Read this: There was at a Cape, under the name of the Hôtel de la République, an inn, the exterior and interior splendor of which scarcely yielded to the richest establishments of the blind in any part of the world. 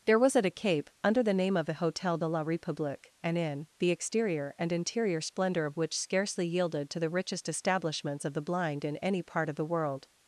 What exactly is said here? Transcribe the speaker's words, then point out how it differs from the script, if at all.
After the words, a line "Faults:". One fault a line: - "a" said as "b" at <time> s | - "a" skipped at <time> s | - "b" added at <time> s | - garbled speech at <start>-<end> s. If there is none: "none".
There was at a Cape, under the name of the Hôtel de la République, an inn, the exterior and interior splendor of which scarcely yielded to the richest establishments of the blind in any part of the world.
Faults:
none